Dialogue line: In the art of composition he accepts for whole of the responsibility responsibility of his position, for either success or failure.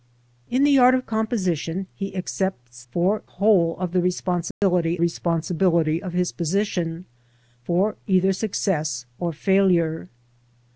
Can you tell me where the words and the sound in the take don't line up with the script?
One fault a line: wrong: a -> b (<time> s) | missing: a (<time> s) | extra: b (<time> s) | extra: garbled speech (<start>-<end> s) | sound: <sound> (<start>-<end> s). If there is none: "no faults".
sound: dropout (4.5-4.6 s)